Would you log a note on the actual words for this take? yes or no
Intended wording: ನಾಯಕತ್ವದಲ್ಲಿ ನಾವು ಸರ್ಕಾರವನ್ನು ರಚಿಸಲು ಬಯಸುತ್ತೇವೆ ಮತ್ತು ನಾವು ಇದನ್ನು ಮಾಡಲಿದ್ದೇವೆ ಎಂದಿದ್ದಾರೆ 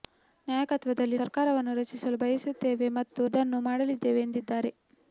yes